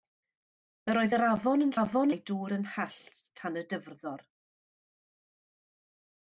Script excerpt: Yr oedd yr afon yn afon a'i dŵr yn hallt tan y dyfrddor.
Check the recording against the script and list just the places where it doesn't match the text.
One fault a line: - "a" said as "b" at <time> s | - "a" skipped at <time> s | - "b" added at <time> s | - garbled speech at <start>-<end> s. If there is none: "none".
none